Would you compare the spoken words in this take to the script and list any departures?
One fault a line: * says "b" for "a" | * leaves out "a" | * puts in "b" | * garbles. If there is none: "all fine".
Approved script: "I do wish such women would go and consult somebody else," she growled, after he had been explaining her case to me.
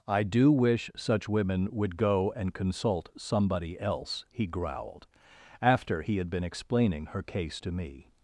* says "he" for "she"